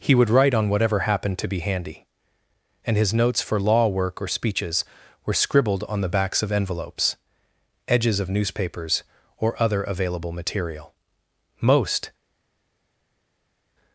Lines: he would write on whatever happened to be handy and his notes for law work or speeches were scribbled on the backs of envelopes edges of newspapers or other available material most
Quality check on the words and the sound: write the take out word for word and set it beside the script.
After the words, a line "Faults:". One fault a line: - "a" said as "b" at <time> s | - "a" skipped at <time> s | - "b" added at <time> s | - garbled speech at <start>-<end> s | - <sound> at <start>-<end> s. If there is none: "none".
he would write on whatever happened to be handy and his notes for law work or speeches were scribbled on the backs of envelopes edges of newspapers or other available material most
Faults:
none